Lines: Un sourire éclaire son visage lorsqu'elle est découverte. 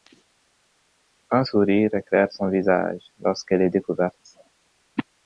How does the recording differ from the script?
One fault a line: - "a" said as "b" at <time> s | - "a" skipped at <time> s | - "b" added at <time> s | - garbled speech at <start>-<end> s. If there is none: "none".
none